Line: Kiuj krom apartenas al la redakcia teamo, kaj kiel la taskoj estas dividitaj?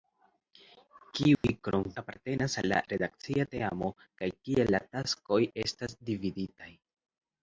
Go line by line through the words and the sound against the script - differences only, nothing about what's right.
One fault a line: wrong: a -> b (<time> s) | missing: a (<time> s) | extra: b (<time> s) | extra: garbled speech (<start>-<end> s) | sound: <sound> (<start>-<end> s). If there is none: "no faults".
sound: dropout (1.3-1.4 s)